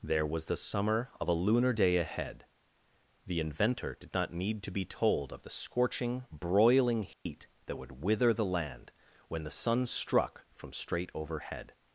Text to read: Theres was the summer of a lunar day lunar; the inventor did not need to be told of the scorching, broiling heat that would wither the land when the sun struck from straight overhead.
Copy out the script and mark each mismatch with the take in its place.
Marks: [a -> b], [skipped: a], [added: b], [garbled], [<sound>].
[Theres -> There] was the summer of a lunar day [lunar; -> ahead] the inventor did not need to be told of the scorching, broiling heat [dropout] that would wither the land when the sun struck from straight overhead.